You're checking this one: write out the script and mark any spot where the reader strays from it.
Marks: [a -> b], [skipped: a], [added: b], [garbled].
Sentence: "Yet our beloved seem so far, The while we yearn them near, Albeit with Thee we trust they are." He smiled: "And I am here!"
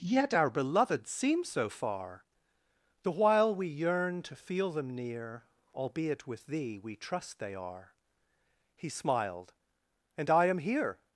"Yet our beloved seem so far, The while we yearn [added: to feel] them near, Albeit with Thee we trust they are." He smiled: "And I am here!"